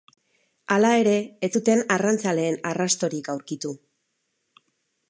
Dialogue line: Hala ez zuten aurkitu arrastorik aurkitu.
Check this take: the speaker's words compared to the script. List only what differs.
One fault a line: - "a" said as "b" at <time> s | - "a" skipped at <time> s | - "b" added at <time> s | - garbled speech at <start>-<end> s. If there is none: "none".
- "ere" added at 1.0 s
- "aurkitu" said as "arrantzaleen" at 2.0 s